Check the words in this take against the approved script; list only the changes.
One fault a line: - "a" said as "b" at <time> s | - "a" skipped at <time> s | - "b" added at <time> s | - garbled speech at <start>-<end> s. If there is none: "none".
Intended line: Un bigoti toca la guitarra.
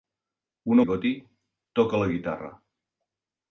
none